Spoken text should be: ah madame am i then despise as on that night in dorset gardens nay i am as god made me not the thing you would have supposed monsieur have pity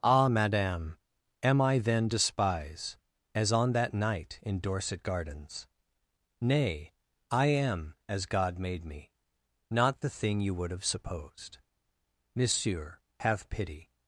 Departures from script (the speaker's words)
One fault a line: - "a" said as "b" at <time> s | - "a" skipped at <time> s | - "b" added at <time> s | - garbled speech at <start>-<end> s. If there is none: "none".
none